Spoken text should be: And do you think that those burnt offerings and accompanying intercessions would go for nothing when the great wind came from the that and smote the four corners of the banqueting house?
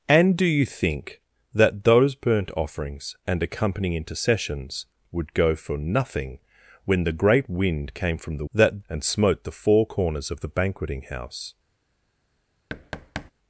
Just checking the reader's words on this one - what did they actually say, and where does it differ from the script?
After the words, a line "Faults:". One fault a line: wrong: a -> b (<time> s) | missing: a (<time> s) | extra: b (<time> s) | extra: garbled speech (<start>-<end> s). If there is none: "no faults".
And do you think that those burnt offerings and accompanying intercessions would go for nothing when the great wind came from the that and smote the four corners of the banqueting house?
Faults:
no faults